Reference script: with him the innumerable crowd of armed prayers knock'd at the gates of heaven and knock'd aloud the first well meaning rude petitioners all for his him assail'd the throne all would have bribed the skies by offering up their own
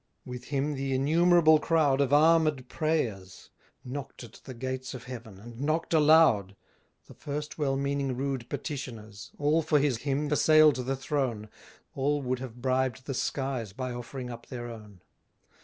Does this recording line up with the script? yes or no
yes